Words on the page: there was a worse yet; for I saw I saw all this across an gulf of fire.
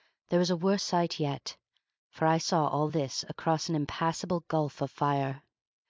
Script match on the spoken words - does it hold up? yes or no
no